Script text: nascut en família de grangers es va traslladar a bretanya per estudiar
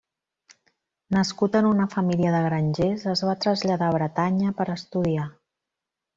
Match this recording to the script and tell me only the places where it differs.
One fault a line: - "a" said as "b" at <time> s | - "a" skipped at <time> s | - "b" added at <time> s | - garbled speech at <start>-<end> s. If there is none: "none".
- "una" added at 1.7 s